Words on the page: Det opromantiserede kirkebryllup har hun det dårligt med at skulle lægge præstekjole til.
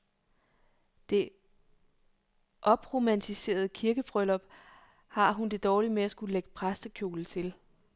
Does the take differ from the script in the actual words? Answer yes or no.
no